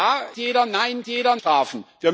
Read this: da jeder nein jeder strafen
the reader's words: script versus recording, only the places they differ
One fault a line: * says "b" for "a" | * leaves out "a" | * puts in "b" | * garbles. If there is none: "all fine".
all fine